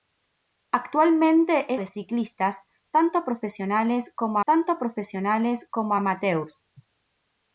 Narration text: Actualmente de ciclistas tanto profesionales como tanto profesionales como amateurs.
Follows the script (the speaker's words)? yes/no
yes